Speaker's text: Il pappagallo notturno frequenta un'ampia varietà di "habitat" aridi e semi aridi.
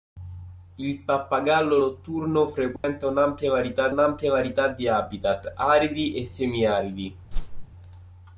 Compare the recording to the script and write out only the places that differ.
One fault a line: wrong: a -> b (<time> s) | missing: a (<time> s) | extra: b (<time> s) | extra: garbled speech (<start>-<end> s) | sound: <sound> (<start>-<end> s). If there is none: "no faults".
sound: dropout (2.8-2.8 s)
extra: un'ampia varietà (3.9 s)
sound: whoosh (7.3-7.7 s)